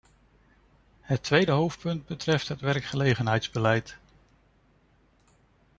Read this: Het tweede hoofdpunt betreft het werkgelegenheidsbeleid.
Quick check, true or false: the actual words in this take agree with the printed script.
true